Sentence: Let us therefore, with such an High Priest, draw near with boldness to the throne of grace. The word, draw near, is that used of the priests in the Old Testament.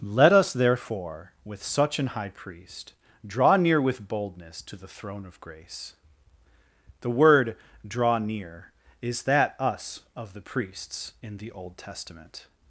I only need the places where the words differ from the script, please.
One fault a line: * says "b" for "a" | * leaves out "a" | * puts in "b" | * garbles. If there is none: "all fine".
* says "us" for "used"